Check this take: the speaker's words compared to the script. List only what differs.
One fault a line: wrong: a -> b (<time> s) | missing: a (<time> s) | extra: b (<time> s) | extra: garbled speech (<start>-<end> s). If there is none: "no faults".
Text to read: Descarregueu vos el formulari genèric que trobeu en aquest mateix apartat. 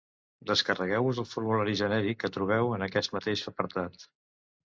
no faults